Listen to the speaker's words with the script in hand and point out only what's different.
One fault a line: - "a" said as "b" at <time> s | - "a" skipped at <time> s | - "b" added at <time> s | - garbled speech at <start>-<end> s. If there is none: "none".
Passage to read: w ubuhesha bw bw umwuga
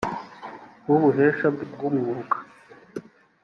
none